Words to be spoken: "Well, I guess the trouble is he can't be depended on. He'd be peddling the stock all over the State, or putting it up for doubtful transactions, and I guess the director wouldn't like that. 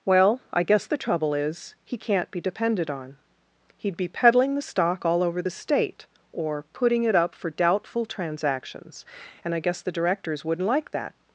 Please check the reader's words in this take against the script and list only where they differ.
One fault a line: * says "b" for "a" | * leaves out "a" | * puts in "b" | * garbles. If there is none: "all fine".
* says "directors" for "director"